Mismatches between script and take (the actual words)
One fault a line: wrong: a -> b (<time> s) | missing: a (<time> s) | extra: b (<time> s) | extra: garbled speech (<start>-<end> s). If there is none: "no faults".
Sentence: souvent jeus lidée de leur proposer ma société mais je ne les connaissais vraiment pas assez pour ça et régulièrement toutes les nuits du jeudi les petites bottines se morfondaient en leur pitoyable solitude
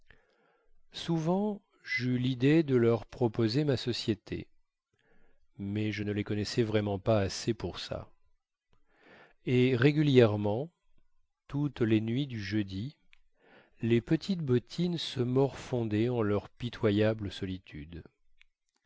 no faults